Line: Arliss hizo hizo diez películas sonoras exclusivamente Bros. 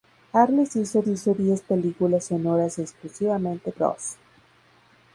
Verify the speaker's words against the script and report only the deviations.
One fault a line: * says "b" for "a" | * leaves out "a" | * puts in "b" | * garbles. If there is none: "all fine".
all fine